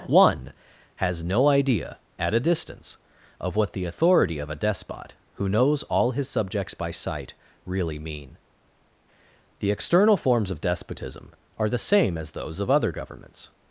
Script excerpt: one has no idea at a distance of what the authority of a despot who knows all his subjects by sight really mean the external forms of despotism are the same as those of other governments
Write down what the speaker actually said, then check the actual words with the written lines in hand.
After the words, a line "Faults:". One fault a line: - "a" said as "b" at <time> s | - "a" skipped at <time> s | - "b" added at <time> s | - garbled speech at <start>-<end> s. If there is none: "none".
one has no idea at a distance of what the authority of a despot who knows all his subjects by sight really mean the external forms of despotism are the same as those of other governments
Faults:
none